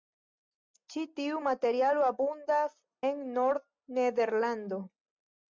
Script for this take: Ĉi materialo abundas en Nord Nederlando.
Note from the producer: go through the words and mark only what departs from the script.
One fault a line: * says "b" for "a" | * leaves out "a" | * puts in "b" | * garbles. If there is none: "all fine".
* puts in "tiu"